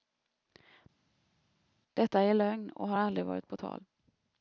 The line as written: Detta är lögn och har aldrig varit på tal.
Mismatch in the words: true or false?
false